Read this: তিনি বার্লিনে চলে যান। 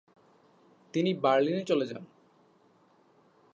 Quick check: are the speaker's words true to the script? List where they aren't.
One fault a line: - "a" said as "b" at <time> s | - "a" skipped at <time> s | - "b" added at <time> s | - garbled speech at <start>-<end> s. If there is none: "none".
none